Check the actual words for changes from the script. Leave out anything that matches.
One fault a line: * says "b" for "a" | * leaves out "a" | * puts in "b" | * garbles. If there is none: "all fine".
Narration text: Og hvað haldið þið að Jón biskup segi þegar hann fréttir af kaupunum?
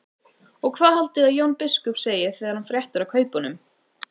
all fine